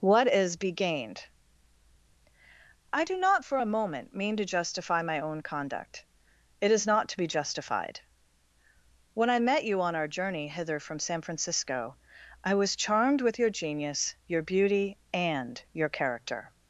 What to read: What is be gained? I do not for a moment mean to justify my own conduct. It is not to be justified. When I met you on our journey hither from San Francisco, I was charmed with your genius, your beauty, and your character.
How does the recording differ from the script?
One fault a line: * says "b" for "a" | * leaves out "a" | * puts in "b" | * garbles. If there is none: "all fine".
all fine